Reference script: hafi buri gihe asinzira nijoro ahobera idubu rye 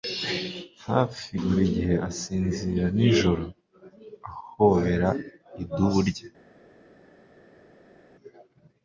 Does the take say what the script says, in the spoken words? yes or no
yes